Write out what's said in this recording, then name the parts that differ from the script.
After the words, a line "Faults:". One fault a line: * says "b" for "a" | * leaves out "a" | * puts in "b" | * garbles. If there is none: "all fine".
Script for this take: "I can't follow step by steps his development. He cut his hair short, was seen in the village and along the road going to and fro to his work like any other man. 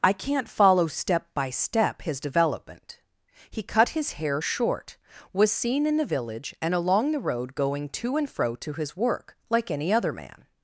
"I can't follow step by step his development. He cut his hair short, was seen in the village and along the road going to and fro to his work like any other man.
Faults:
* says "step" for "steps"